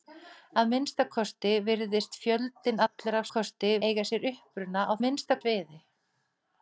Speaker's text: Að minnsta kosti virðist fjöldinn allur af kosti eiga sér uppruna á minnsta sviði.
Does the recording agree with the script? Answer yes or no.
yes